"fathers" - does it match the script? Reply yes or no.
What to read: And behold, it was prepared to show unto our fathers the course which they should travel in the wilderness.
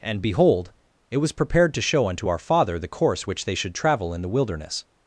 no